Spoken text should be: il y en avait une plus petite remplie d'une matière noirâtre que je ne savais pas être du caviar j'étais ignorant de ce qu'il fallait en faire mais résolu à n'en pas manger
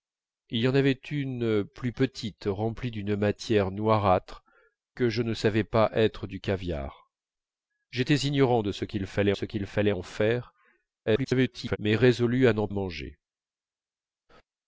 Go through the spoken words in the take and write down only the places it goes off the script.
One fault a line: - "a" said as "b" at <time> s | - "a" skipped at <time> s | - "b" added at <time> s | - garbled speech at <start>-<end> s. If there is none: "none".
- "ce qu'il fallait" added at 9.3 s
- garbled speech at 11.1-11.8 s
- "pas" skipped at 12.7 s